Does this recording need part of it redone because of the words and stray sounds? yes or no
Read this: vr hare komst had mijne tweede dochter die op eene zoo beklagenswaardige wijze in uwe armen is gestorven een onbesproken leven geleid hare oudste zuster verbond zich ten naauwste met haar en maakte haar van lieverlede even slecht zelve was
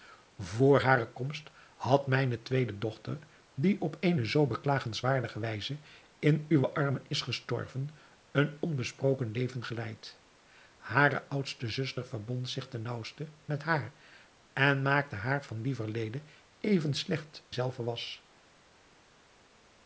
no